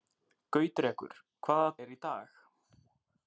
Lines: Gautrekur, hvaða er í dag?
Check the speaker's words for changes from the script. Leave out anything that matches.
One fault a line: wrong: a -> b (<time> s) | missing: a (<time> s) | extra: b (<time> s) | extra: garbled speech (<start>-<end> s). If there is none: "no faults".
no faults